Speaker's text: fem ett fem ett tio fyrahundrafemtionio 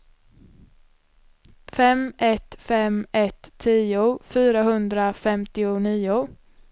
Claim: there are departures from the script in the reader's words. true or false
false